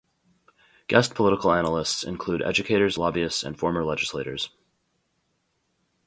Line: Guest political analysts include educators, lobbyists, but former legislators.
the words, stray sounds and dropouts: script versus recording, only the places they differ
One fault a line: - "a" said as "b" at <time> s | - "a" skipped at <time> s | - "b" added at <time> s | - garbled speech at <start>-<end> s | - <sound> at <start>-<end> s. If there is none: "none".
- "but" said as "and" at 3.4 s